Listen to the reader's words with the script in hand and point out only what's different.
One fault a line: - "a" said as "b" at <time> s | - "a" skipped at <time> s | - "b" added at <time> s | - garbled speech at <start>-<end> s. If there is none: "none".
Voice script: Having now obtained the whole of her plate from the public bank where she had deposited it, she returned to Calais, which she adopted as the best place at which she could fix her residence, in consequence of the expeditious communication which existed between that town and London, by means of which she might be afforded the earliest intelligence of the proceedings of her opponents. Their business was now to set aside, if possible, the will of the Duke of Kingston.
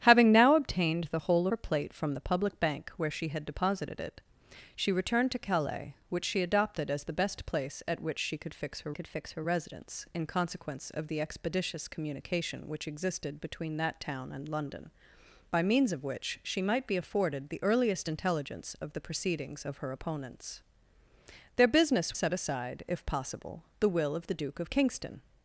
- "of" skipped at 1.5 s
- "could fix her" added at 8.9 s
- "was now to" skipped at 22.1 s